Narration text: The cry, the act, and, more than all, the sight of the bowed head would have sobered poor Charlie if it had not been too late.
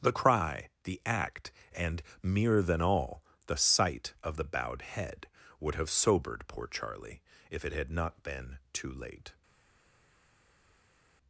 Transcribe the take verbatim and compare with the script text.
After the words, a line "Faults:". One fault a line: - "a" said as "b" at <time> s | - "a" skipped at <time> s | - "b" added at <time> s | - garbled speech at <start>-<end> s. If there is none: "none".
The cry, the act, and, mere than all, the sight of the bowed head would have sobered poor Charlie if it had not been too late.
Faults:
- "more" said as "mere" at 2.2 s